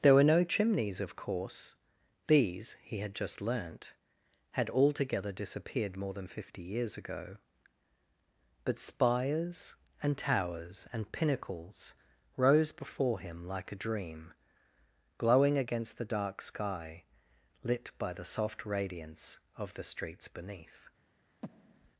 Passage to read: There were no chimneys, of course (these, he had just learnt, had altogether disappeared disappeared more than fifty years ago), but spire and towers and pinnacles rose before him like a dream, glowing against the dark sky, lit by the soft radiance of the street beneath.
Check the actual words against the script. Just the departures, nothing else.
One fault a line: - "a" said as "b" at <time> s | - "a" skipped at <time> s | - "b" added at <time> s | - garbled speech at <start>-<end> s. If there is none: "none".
- "disappeared" skipped at 6.0 s
- "spire" said as "spires" at 8.8 s
- "street" said as "streets" at 19.8 s